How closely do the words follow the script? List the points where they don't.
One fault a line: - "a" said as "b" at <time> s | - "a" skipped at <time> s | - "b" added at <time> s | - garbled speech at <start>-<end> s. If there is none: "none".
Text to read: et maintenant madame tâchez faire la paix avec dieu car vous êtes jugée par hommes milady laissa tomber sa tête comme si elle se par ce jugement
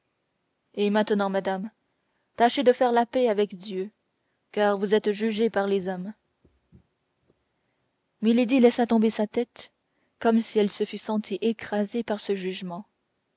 - "de" added at 2.6 s
- "les" added at 5.7 s
- "fût sentie écrasée" added at 10.8 s